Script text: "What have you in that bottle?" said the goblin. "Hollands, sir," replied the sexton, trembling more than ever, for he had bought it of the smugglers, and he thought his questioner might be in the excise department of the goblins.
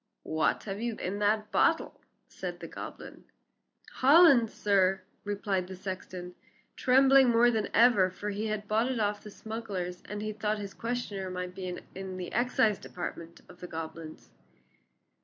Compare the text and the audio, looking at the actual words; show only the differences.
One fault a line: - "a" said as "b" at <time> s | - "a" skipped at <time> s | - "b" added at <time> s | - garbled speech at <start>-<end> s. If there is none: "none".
none